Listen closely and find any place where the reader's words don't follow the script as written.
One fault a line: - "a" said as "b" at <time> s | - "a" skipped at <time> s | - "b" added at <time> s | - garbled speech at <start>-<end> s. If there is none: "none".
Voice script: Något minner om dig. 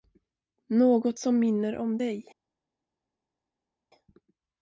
- "som" added at 1.2 s